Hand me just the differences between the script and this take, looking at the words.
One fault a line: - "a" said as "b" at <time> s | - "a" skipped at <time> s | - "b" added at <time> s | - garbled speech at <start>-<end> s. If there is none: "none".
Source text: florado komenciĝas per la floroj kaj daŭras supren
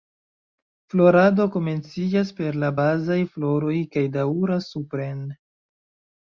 - "bazaj" added at 2.8 s